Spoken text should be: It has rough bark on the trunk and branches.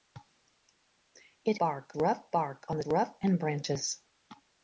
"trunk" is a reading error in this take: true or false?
true